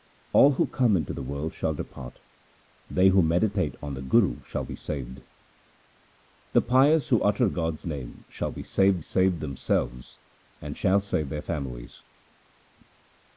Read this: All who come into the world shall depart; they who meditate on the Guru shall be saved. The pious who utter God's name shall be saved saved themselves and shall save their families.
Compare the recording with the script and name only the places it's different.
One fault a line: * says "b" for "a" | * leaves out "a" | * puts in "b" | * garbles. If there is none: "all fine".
all fine